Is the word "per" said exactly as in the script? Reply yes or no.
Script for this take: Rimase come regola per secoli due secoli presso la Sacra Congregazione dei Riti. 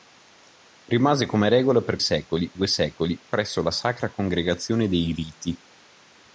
yes